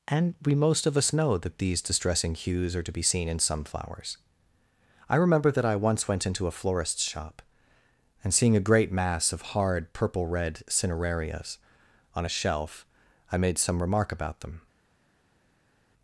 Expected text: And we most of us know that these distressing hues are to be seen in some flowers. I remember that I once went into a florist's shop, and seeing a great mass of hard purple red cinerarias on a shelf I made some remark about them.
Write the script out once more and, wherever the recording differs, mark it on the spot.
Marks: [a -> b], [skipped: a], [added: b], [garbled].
And we most of us know that these distressing hues are to be seen in some flowers. I remember that I once went into a florist's shop, and seeing a great mass of hard purple red cinerarias on a shelf I made some remark about them.